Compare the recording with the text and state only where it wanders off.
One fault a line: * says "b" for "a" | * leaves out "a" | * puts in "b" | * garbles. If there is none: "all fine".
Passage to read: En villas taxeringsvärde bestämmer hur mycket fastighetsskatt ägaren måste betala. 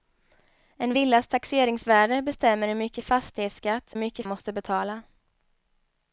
* says "mycket" for "ägaren"